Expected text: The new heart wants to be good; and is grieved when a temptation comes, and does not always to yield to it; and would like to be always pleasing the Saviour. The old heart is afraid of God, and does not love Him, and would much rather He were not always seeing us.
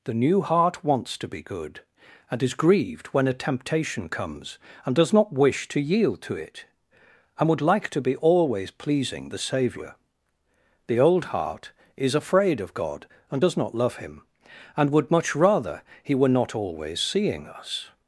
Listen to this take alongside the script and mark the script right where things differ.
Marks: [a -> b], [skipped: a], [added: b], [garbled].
The new heart wants to be good; and is grieved when a temptation comes, and does not [always -> wish] to yield to it; and would like to be always pleasing the Saviour. The old heart is afraid of God, and does not love Him, and would much rather He were not always seeing us.